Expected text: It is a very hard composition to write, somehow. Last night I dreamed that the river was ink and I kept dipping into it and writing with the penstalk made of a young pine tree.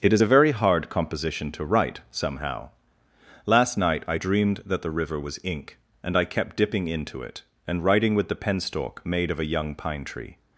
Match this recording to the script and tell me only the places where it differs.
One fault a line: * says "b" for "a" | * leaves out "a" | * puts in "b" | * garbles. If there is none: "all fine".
all fine